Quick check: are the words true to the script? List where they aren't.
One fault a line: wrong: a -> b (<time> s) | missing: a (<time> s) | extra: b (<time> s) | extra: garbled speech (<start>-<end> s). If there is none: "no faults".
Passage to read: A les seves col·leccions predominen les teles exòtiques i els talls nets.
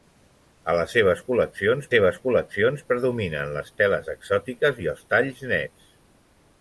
extra: seves col·leccions (1.9 s)